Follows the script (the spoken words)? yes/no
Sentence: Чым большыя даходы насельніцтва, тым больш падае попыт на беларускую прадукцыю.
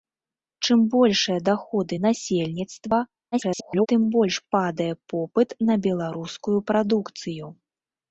no